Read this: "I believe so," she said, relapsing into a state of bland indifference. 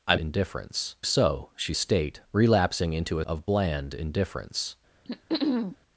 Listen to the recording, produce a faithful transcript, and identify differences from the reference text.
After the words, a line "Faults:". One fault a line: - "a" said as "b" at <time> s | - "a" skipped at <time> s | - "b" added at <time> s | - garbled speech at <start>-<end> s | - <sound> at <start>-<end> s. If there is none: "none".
"I indifference so," she state, relapsing into a of bland indifference.
Faults:
- "believe" said as "indifference" at 0.1 s
- "said" said as "state" at 1.7 s
- "state" skipped at 3.2 s
- throat clearing at 5.0-5.8 s